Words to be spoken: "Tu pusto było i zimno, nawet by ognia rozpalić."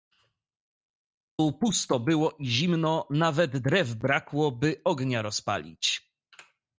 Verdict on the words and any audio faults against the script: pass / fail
fail